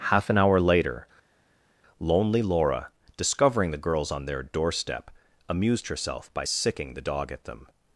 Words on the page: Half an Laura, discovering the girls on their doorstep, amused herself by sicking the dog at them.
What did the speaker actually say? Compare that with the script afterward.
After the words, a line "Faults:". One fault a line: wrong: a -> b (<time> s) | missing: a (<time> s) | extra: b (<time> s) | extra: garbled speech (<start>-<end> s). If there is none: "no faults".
Half an hour later, lonely Laura, discovering the girls on their doorstep, amused herself by sicking the dog at them.
Faults:
extra: hour later lonely (0.4 s)